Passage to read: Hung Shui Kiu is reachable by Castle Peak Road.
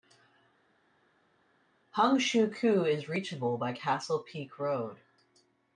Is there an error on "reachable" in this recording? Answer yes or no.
no